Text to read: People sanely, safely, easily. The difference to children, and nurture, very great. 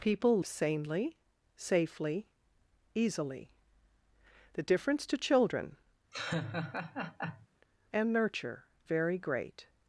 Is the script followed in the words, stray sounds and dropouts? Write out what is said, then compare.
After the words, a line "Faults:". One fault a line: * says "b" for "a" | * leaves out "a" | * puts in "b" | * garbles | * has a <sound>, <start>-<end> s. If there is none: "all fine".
People sanely, safely, easily. The difference to children, and nurture, very great.
Faults:
* has a laugh, 6.1-7.5 s